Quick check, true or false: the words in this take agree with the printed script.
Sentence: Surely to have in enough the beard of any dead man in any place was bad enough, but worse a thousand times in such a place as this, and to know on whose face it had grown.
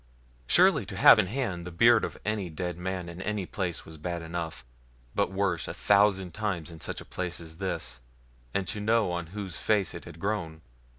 false